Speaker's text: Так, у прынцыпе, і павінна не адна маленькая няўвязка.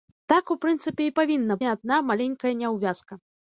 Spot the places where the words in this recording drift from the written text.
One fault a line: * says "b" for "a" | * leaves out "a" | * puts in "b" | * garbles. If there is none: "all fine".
all fine